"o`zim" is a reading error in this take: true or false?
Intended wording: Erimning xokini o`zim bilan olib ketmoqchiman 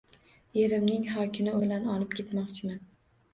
true